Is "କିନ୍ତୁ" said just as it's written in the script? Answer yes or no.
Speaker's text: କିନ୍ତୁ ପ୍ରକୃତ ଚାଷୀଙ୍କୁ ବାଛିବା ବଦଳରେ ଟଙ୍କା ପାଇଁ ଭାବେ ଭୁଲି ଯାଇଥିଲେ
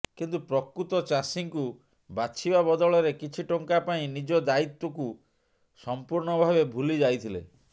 yes